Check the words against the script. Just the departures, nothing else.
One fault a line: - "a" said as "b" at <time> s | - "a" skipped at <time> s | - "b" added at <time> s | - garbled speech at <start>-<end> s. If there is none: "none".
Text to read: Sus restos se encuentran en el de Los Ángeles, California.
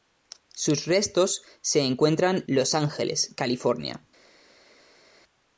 - "en el de" skipped at 2.4 s